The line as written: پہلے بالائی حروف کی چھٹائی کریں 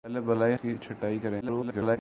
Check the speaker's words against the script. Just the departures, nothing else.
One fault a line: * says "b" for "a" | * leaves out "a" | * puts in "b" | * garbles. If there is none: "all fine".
* leaves out "حروف"
* garbles